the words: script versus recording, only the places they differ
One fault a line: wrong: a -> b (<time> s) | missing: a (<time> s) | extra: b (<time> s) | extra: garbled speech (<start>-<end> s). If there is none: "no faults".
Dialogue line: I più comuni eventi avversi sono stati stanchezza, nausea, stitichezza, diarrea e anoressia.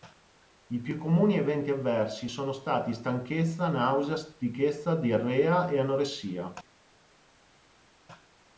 no faults